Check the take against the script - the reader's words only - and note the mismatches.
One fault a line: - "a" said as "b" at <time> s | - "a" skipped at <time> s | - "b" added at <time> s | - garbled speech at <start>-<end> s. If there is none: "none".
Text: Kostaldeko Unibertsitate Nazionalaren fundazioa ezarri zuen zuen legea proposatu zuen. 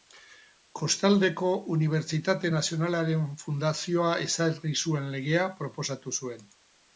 - "zuen" skipped at 5.1 s